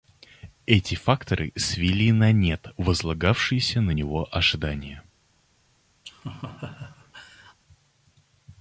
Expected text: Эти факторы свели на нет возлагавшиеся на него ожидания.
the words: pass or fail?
pass